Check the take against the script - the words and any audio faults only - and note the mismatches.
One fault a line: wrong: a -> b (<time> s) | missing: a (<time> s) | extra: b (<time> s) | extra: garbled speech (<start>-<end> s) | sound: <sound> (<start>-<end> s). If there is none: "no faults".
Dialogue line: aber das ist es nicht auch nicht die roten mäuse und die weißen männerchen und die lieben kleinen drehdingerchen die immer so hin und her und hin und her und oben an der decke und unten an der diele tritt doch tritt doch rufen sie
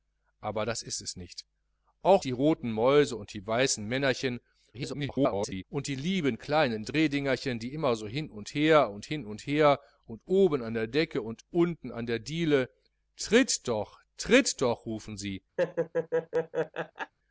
missing: nicht (2.2 s)
extra: garbled speech (4.7-5.6 s)
sound: laugh (15.6-17.1 s)